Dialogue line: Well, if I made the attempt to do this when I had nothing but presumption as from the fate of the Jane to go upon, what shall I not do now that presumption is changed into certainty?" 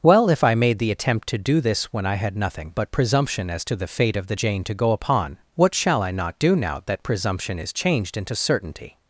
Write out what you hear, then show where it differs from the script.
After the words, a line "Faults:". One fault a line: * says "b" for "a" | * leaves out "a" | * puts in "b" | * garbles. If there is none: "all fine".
Well, if I made the attempt to do this when I had nothing but presumption as to the fate of the Jane to go upon, what shall I not do now that presumption is changed into certainty?"
Faults:
* says "to" for "from"